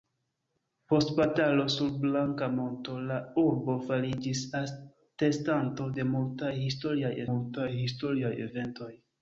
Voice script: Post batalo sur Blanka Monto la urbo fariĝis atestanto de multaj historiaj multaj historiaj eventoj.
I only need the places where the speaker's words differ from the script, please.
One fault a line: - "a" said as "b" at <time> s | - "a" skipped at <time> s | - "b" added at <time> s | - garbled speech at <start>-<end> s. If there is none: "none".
none